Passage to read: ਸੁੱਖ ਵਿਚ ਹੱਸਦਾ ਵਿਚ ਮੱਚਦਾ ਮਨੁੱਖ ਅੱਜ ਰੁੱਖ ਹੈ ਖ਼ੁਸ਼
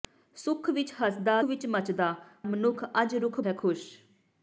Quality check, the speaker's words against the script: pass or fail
pass